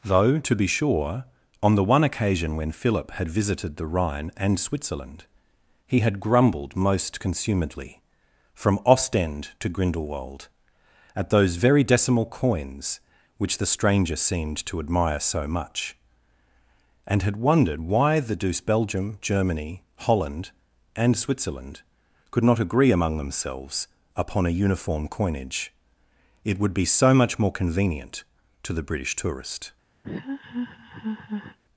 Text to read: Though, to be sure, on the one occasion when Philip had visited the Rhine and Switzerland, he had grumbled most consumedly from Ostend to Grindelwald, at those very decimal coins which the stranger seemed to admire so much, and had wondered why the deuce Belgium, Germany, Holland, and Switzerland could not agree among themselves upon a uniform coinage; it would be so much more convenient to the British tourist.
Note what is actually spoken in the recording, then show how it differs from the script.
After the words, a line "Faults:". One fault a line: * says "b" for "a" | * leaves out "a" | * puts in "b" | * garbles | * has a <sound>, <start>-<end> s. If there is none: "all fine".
Though, to be sure, on the one occasion when Philip had visited the Rhine and Switzerland, he had grumbled most consumedly from Ostend to Grindelwald, at those very decimal coins which the stranger seemed to admire so much, and had wondered why the deuce Belgium, Germany, Holland, and Switzerland could not agree among themselves upon a uniform coinage; it would be so much more convenient to the British tourist.
Faults:
* has a laugh, 30.0-31.6 s